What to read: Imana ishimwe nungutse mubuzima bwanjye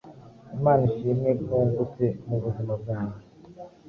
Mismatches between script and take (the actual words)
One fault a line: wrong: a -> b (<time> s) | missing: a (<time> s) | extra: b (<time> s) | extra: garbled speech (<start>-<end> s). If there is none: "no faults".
no faults